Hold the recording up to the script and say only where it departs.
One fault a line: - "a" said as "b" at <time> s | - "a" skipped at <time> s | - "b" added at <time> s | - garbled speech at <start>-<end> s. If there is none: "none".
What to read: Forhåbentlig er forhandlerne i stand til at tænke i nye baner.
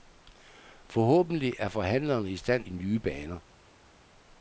- "til at tænke" skipped at 2.6 s